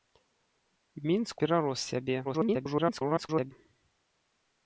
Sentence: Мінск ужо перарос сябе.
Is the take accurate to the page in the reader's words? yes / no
no